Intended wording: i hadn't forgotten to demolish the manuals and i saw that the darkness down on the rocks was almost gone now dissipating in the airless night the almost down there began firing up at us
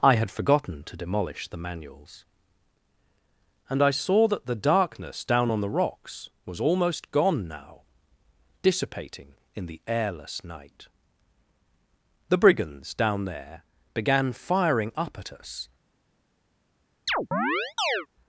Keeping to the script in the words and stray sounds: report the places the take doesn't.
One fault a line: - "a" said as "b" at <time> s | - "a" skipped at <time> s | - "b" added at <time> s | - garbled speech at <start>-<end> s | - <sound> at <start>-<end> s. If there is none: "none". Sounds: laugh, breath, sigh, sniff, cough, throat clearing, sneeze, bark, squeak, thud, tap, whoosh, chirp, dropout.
- "hadn't" said as "had" at 0.1 s
- "almost" said as "brigands" at 12.4 s
- chirp at 17.1-18.1 s